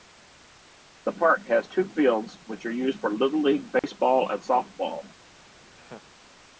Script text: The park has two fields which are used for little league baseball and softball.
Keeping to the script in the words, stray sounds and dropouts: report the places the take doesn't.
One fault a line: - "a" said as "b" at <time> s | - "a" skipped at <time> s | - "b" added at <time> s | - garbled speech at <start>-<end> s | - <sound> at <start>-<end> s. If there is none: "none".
- dropout at 3.8-3.8 s
- laugh at 5.7-6.1 s